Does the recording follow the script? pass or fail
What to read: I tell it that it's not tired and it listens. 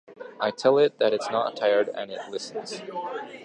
pass